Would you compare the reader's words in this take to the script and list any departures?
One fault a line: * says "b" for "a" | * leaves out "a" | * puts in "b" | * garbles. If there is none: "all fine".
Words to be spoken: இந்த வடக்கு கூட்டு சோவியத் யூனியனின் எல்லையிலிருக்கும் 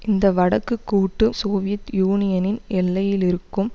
all fine